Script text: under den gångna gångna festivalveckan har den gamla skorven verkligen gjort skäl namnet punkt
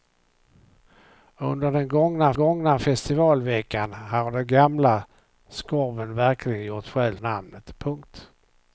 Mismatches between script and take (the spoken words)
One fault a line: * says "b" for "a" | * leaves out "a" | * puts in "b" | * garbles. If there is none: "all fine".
all fine